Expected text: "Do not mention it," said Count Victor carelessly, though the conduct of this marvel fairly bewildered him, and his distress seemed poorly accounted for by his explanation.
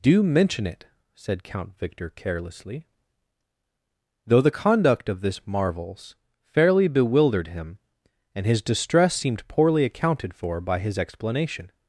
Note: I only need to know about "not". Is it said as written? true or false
false